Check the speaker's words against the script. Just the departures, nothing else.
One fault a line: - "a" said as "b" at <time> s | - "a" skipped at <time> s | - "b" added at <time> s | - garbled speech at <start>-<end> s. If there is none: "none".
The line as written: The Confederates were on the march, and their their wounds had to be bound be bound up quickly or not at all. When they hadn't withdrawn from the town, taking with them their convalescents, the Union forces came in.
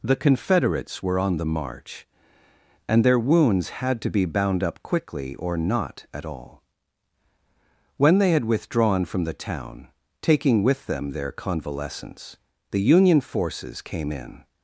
- "their" skipped at 3.2 s
- "be bound" skipped at 4.6 s
- "hadn't" said as "had" at 8.3 s